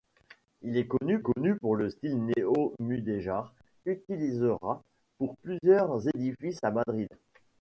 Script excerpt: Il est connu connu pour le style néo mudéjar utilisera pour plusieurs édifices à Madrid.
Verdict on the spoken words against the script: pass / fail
pass